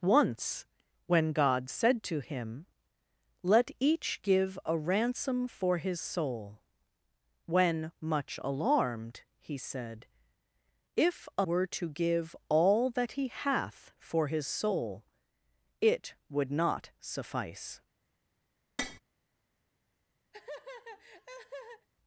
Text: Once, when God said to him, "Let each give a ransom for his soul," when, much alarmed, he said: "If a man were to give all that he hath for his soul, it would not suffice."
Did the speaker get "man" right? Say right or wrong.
wrong